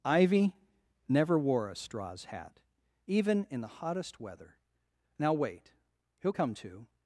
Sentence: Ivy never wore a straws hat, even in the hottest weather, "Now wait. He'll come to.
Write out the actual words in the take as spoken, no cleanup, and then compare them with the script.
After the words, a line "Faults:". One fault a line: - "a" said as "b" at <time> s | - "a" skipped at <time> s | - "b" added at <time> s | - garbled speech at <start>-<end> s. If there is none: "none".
Ivy never wore a straws hat, even in the hottest weather, "Now wait. He'll come to.
Faults:
none